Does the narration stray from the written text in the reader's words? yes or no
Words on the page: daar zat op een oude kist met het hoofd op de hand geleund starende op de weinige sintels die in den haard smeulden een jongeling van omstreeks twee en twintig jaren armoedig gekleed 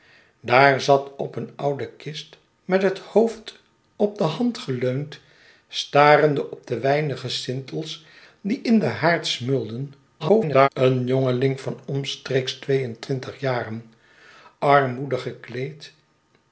yes